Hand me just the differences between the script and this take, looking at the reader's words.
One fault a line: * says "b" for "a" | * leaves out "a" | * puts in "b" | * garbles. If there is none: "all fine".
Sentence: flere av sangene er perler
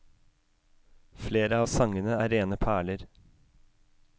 * puts in "rene"